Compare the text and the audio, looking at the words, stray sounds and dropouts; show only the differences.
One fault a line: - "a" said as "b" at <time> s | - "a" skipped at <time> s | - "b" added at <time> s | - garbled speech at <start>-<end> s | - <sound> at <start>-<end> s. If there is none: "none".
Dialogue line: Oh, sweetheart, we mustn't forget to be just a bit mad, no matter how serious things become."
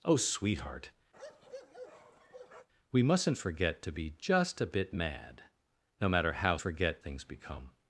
- bark at 1.1-2.7 s
- "serious" said as "forget" at 6.6 s